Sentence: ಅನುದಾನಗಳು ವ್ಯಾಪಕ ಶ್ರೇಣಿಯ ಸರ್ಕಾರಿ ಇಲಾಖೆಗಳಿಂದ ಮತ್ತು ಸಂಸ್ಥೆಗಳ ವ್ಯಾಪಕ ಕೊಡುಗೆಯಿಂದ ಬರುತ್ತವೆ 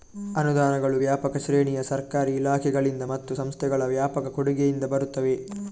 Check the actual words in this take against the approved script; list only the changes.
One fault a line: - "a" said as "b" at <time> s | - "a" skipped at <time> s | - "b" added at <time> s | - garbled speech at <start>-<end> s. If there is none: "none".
none